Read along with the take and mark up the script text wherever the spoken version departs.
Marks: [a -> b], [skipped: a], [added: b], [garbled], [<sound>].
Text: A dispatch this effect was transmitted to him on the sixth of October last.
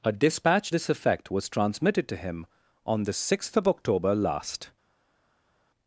A dispatch this effect was transmitted to him on the sixth of October last.